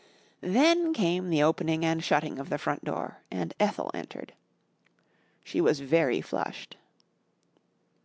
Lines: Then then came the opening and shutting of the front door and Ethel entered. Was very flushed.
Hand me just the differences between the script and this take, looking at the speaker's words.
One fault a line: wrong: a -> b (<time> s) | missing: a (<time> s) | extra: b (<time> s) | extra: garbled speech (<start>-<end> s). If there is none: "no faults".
missing: then (0.9 s)
extra: She (5.4 s)